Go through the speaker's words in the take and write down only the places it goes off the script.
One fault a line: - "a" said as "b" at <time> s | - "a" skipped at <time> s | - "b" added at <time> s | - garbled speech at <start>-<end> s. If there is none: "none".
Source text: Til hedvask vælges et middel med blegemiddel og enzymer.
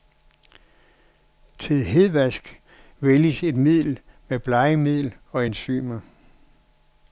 none